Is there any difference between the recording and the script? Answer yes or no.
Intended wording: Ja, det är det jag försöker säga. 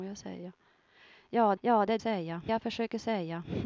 yes